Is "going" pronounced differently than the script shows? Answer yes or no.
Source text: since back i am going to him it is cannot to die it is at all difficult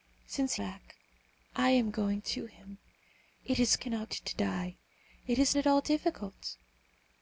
no